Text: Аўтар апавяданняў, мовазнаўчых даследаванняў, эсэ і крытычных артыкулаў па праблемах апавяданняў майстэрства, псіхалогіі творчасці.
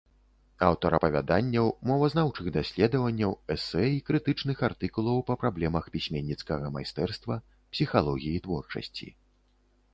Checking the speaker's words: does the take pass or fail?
fail